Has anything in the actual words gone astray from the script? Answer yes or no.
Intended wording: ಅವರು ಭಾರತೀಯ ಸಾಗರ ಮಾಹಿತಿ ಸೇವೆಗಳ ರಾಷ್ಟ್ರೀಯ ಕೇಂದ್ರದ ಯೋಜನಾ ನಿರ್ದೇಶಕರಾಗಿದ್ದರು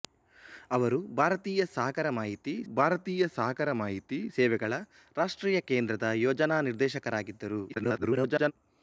yes